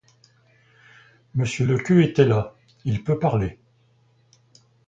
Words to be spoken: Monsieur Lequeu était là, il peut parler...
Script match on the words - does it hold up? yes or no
yes